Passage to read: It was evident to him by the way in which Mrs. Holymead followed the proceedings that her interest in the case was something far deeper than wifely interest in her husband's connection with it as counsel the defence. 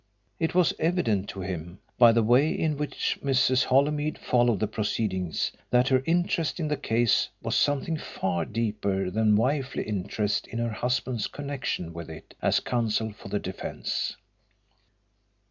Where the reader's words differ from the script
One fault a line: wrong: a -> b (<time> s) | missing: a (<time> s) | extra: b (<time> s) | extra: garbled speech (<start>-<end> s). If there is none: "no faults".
extra: for (13.1 s)